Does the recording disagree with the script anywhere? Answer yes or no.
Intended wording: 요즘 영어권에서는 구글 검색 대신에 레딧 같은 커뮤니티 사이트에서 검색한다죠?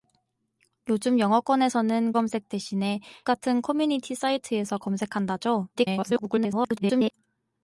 yes